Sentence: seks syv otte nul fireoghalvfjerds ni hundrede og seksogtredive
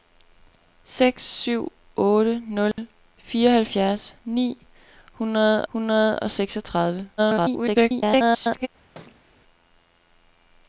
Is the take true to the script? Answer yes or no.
no